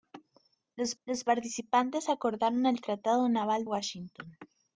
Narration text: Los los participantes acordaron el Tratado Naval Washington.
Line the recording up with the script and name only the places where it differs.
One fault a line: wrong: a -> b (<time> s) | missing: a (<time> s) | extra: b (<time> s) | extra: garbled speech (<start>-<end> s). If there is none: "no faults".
no faults